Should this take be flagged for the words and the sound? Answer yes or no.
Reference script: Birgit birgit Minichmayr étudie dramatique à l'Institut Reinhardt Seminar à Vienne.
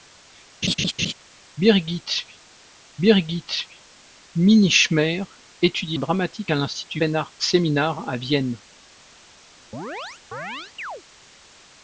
yes